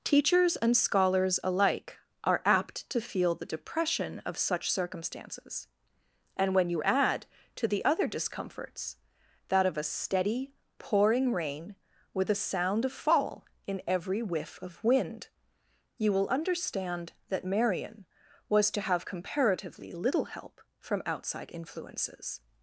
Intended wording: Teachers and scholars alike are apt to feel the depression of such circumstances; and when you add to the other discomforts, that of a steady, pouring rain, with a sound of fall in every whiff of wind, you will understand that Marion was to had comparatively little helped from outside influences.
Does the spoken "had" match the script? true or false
false